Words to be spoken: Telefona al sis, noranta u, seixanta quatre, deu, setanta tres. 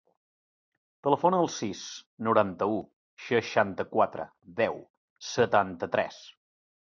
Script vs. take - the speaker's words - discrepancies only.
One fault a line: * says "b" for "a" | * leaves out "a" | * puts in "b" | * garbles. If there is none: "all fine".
all fine